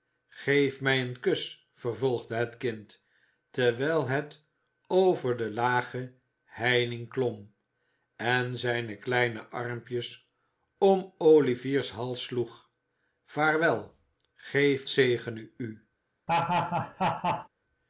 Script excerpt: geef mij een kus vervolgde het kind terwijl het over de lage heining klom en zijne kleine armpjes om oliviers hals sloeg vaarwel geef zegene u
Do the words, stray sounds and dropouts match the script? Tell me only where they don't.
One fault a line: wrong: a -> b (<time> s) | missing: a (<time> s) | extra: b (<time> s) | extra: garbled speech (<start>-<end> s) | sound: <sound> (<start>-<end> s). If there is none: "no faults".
sound: laugh (16.3-17.5 s)